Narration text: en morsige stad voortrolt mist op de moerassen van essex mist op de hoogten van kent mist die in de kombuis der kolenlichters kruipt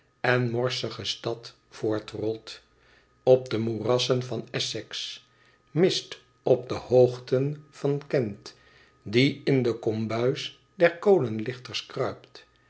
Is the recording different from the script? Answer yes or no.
yes